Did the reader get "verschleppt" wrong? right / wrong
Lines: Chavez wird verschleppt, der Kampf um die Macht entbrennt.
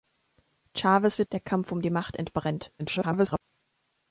wrong